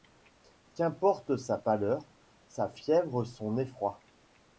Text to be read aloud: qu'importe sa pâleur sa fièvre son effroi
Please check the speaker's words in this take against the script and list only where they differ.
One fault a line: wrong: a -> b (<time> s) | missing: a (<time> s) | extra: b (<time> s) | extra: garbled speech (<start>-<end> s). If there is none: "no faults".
no faults